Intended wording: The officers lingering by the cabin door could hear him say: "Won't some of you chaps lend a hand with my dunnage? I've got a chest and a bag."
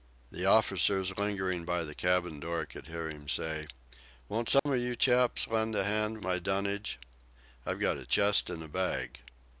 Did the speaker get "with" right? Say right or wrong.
wrong